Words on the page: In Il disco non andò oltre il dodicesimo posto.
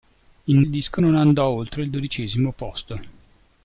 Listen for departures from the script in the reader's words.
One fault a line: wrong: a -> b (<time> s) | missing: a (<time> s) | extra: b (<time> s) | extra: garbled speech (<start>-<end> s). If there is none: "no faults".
no faults